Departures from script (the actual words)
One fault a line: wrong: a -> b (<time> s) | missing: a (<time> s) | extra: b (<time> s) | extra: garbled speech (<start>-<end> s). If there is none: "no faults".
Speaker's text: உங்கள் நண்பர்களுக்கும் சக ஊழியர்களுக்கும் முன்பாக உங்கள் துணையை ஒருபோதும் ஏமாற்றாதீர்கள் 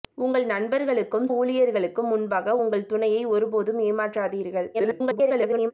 missing: சக (1.3 s)
extra: garbled speech (4.7-5.7 s)